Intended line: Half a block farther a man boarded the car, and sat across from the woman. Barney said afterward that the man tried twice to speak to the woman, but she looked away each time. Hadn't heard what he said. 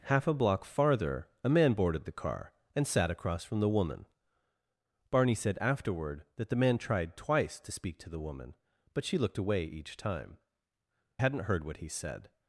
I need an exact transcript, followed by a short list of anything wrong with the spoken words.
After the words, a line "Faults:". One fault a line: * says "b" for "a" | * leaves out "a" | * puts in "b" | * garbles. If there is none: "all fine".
Half a block farther a man boarded the car, and sat across from the woman. Barney said afterward that the man tried twice to speak to the woman, but she looked away each time. Hadn't heard what he said.
Faults:
all fine